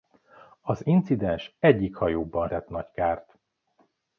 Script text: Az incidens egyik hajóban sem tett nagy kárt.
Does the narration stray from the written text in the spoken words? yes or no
yes